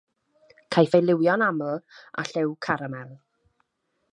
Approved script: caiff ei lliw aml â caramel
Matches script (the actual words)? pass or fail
fail